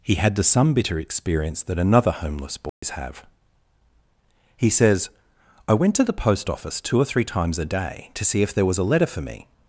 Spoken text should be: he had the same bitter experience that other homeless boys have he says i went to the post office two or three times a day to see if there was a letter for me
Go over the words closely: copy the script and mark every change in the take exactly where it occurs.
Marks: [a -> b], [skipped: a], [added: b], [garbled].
he had the [same -> some] bitter experience that [other -> another] homeless boys have he says i went to the post office two or three times a day to see if there was a letter for me